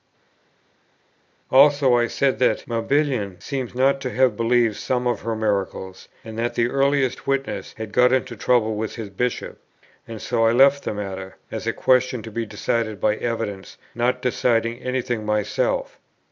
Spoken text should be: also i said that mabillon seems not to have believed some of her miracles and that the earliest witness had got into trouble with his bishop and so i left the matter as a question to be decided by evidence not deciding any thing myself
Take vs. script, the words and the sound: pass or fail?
pass